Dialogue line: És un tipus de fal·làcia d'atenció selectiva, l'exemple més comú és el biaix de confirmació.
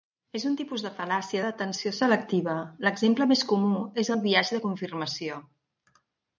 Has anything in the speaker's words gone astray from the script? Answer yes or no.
no